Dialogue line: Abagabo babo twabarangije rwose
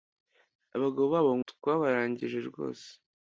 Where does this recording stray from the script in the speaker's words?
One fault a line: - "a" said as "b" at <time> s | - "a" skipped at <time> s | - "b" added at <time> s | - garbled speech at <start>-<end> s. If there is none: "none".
none